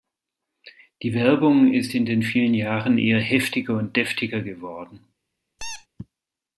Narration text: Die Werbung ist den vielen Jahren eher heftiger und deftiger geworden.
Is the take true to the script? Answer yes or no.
no